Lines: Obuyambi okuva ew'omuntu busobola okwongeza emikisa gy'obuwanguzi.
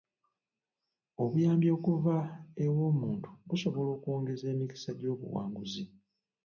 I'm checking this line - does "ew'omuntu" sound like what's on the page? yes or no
yes